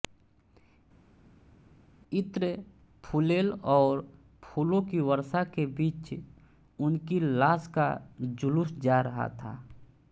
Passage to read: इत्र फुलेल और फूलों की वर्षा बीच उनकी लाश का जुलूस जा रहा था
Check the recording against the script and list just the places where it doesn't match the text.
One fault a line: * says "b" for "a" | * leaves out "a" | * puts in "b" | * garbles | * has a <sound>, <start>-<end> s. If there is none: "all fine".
* puts in "के"